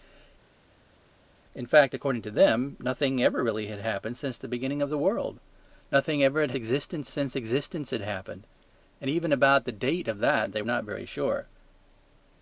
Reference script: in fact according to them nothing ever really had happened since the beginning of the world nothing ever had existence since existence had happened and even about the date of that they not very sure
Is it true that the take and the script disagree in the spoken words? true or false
false